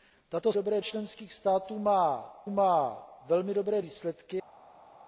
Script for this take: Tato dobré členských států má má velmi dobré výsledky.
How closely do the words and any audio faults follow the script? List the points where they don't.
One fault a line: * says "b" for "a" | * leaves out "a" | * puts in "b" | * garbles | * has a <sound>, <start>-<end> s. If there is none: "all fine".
all fine